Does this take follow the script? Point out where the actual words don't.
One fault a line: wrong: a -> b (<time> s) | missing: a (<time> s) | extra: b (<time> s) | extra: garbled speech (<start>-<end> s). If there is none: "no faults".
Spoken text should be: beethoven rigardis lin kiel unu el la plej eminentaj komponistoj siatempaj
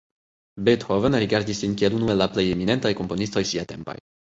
no faults